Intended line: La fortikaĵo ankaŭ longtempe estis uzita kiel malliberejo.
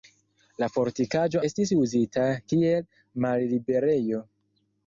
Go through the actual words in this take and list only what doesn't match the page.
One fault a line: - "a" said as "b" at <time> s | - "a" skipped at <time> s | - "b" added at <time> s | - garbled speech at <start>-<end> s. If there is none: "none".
- "ankaŭ longtempe" skipped at 1.4 s